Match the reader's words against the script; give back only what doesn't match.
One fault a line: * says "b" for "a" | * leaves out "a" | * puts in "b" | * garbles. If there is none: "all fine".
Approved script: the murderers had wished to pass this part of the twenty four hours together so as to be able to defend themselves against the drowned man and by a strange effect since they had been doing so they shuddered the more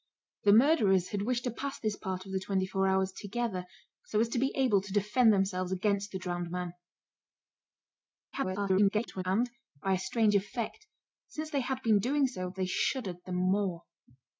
* garbles